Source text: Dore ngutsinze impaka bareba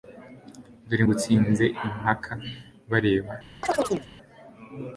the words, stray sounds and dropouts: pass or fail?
fail